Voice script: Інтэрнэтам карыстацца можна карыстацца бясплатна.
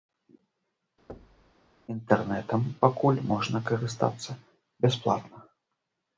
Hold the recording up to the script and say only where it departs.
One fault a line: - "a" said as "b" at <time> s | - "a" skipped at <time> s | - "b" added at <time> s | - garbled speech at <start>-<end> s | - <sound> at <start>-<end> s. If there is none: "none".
- thud at 1.1-1.5 s
- "карыстацца" said as "пакуль" at 2.9 s